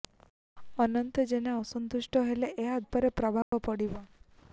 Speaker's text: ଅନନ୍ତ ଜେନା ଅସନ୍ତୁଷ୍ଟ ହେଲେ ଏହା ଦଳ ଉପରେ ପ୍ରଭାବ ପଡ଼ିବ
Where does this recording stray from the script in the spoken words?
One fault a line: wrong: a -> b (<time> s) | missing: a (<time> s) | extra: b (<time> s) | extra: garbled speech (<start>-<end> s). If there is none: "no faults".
missing: ଦଳ (2.8 s)